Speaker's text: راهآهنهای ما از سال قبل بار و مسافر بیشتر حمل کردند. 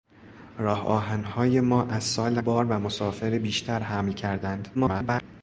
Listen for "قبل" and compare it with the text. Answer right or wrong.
wrong